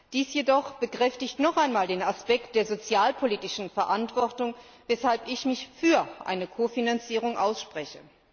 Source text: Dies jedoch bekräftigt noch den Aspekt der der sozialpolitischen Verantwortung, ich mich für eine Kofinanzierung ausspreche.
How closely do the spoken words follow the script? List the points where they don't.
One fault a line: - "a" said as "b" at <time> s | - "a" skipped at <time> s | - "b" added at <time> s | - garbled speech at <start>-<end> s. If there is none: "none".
- "einmal" added at 1.6 s
- "der" skipped at 2.6 s
- "weshalb" added at 4.9 s